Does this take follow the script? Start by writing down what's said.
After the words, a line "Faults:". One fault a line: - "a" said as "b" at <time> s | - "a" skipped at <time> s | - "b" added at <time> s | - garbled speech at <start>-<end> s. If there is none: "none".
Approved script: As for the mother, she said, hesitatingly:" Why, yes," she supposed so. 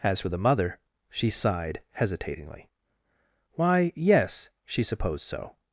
As for the mother, she sighed, hesitatingly:" Why, yes," she supposed so.
Faults:
- "said" said as "sighed" at 1.3 s